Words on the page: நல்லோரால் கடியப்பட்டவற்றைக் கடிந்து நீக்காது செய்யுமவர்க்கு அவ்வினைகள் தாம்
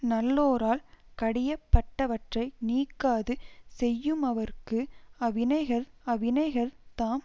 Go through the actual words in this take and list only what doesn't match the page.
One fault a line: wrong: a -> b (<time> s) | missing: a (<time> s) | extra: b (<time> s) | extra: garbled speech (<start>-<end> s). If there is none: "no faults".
missing: கடிந்து (2.6 s)
extra: அவ்வினைகள் (6.1 s)